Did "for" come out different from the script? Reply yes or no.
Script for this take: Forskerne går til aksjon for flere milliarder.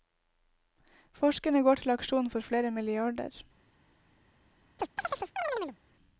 no